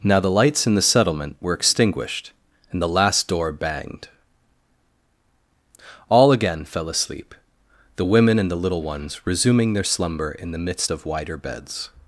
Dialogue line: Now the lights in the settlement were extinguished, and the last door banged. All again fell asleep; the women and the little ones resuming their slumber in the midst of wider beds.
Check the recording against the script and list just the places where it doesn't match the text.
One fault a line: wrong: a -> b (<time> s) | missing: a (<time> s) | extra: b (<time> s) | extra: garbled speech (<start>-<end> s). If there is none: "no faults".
no faults